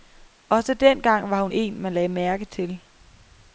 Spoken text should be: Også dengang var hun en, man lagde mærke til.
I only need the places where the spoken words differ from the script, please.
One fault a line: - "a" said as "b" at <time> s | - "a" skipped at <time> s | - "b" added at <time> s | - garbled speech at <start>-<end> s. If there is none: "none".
none